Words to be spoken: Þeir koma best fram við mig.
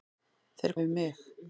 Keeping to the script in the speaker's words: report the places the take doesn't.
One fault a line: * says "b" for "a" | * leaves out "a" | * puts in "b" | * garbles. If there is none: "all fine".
* leaves out "koma best fram"